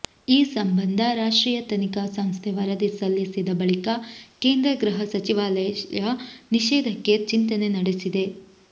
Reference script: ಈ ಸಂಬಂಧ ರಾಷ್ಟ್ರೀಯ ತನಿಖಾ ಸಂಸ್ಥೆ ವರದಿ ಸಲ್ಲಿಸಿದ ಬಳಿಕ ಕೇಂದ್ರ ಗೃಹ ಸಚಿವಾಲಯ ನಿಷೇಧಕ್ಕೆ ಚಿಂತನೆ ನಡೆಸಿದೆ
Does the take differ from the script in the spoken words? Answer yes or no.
no